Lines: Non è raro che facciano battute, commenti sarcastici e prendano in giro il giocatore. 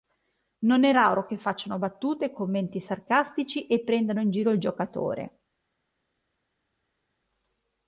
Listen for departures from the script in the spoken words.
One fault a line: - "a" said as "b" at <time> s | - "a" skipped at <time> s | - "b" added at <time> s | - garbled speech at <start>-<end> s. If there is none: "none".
none